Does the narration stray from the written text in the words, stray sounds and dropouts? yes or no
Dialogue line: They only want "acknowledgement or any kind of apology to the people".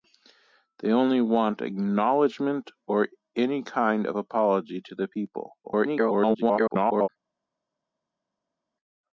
yes